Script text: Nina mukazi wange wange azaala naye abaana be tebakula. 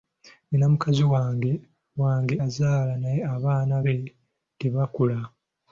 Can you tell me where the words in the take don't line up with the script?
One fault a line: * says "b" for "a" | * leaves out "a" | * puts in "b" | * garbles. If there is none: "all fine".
all fine